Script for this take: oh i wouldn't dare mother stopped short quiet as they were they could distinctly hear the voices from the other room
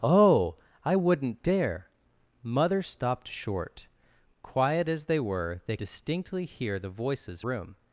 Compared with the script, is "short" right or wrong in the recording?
right